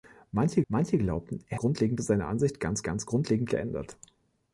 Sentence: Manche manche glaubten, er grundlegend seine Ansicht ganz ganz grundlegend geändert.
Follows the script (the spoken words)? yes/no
yes